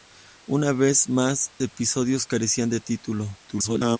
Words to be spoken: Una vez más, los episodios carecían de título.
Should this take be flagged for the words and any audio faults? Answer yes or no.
yes